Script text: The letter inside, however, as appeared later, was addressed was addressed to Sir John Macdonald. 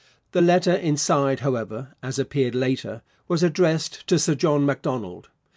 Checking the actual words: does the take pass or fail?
fail